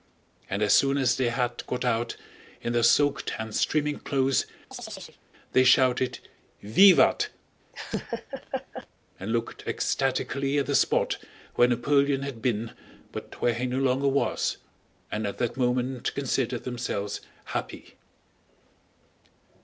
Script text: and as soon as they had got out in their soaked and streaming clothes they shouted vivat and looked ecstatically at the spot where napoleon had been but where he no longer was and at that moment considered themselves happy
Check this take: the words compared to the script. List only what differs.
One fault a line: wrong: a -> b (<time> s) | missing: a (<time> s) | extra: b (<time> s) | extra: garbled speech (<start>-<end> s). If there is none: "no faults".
no faults